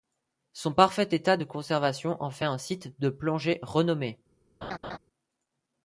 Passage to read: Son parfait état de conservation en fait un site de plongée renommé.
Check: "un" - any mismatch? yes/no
no